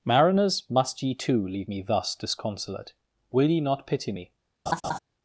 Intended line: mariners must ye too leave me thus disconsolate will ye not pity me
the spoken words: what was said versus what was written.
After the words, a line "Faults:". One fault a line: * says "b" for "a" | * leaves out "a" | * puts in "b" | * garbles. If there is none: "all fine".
mariners must ye too leave me thus disconsolate will ye not pity me
Faults:
all fine